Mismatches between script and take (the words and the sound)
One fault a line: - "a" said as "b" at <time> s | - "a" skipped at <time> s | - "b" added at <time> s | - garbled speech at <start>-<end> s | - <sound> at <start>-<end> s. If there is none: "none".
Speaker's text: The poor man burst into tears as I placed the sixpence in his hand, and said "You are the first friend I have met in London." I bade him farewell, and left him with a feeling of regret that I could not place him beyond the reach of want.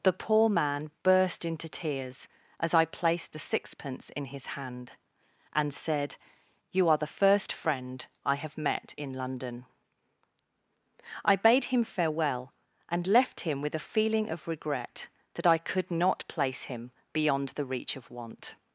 none